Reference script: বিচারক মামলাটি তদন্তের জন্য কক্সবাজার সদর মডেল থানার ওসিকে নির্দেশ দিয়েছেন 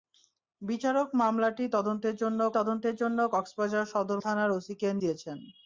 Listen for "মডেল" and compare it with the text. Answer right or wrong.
wrong